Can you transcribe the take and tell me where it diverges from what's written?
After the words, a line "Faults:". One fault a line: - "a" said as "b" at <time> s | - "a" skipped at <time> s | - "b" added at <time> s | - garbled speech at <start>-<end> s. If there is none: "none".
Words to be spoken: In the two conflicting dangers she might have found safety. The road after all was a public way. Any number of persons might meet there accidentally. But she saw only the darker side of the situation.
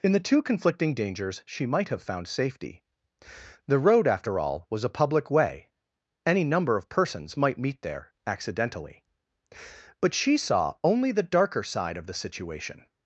In the two conflicting dangers she might have found safety. The road after all was a public way. Any number of persons might meet there accidentally. But she saw only the darker side of the situation.
Faults:
none